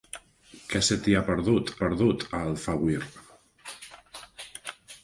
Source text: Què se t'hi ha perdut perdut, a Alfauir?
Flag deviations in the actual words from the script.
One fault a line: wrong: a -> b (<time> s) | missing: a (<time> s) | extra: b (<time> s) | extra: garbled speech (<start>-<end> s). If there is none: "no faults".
no faults